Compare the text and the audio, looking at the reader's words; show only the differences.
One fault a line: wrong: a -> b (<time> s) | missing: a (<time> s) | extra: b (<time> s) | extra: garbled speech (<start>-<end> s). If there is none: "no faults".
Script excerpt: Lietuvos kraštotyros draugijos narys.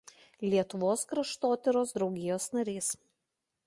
no faults